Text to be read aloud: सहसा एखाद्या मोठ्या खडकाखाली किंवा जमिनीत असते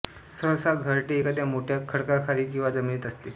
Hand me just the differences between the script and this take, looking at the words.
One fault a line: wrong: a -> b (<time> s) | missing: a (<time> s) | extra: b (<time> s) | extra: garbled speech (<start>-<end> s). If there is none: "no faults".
extra: घरटे (0.8 s)